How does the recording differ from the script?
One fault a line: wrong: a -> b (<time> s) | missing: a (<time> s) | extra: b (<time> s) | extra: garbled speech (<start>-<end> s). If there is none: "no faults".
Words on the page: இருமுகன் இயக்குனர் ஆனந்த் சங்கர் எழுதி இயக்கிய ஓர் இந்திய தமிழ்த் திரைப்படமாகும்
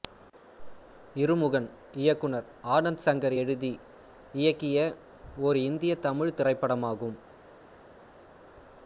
no faults